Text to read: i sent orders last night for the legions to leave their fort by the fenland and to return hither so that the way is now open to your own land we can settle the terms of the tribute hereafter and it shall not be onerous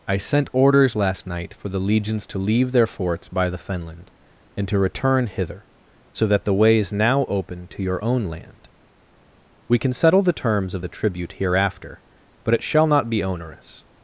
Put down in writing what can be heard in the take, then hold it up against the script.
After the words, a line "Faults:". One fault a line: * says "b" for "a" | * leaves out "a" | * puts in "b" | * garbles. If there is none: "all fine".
i sent orders last night for the legions to leave their forts by the fenland and to return hither so that the way is now open to your own land we can settle the terms of the tribute hereafter but it shall not be onerous
Faults:
* says "forts" for "fort"
* says "but" for "and"